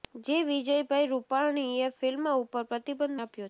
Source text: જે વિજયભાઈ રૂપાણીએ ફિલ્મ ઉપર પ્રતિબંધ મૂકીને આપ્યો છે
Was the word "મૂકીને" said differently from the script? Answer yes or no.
yes